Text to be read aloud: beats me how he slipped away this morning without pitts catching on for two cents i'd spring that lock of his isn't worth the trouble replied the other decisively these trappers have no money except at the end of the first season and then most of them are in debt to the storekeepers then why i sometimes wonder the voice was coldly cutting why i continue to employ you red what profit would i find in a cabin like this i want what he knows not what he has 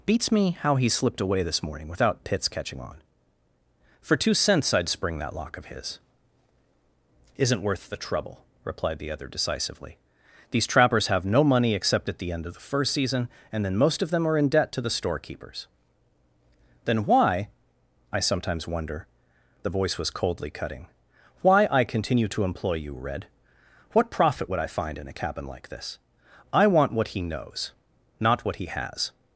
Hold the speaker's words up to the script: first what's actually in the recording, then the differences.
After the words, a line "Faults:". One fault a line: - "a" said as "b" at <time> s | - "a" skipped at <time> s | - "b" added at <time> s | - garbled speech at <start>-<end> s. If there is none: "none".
beats me how he slipped away this morning without pitts catching on for two cents i'd spring that lock of his isn't worth the trouble replied the other decisively these trappers have no money except at the end of the first season and then most of them are in debt to the storekeepers then why i sometimes wonder the voice was coldly cutting why i continue to employ you red what profit would i find in a cabin like this i want what he knows not what he has
Faults:
none